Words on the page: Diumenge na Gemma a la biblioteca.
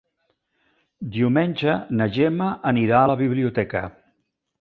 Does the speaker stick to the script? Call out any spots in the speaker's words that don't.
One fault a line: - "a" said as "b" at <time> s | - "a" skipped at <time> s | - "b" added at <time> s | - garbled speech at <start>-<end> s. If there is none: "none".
- "anirà" added at 2.7 s